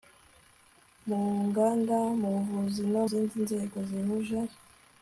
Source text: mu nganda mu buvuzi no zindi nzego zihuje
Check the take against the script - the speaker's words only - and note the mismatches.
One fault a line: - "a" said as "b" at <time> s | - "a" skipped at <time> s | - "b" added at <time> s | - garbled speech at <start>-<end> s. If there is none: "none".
none